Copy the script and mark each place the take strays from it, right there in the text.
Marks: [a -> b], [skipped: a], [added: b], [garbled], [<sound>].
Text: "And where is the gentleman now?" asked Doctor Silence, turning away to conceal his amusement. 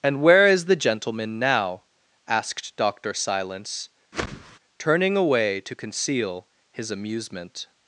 "And where is the gentleman now?" asked Doctor Silence, [whoosh] turning away to conceal his amusement.